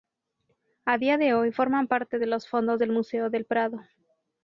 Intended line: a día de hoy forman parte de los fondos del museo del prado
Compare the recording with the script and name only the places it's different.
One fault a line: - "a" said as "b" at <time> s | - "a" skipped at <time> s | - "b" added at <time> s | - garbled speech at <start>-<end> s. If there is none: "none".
none